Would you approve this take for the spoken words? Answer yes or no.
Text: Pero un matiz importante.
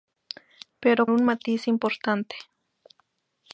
yes